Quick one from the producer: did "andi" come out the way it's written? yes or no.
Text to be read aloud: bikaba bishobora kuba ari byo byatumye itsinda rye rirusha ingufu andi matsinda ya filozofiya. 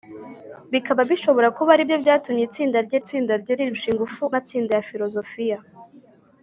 no